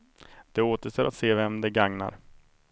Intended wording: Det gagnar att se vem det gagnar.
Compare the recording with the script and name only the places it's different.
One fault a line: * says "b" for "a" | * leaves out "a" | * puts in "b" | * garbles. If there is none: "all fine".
* says "återstår" for "gagnar"